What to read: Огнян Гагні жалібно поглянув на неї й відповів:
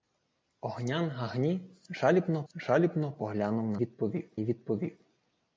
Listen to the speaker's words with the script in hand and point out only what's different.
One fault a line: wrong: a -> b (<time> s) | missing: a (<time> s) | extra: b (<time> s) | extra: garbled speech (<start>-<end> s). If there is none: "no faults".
extra: жалібно (2.5 s)
wrong: неї -> відповів (3.8 s)